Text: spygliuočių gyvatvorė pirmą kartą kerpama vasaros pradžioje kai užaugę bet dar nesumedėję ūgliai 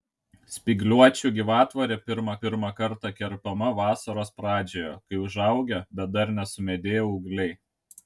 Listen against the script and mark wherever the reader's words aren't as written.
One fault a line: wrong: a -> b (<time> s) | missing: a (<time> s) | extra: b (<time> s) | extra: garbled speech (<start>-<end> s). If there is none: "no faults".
extra: pirmą (2.4 s)